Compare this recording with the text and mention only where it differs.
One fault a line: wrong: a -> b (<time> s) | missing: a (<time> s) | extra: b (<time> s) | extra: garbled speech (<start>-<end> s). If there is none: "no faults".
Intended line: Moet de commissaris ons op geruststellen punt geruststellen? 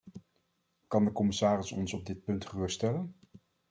wrong: Moet -> Kan (0.9 s)
wrong: geruststellen -> dit (2.0 s)